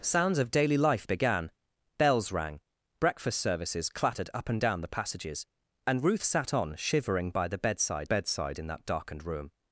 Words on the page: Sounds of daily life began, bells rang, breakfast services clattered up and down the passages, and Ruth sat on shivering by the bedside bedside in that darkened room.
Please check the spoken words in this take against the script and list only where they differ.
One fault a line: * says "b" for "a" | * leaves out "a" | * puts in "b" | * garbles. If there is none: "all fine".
all fine